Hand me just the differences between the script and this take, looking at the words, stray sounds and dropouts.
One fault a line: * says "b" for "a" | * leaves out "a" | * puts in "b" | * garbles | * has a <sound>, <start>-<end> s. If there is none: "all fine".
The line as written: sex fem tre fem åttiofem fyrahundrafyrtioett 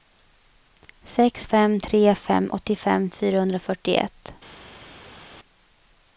all fine